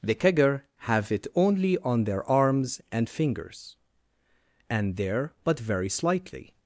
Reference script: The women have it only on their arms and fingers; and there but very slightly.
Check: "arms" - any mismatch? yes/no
no